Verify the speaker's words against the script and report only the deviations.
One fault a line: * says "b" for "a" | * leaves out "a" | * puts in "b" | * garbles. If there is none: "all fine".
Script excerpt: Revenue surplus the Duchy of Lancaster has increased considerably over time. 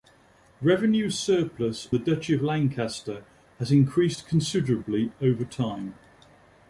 all fine